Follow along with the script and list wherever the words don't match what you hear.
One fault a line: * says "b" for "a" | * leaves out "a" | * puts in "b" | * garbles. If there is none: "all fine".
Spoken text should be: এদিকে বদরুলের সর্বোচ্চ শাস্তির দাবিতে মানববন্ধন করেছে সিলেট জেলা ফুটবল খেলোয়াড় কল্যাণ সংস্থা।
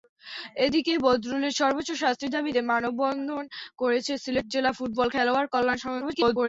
* garbles